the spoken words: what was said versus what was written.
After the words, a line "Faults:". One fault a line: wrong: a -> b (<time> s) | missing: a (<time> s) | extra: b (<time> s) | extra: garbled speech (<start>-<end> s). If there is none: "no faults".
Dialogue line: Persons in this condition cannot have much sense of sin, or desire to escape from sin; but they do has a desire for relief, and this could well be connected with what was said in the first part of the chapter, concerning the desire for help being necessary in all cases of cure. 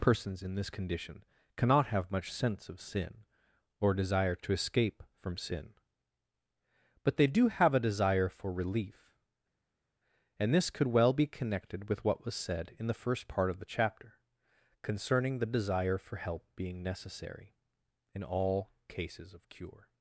Persons in this condition cannot have much sense of sin, or desire to escape from sin; but they do have a desire for relief, and this could well be connected with what was said in the first part of the chapter, concerning the desire for help being necessary in all cases of cure.
Faults:
wrong: has -> have (7.5 s)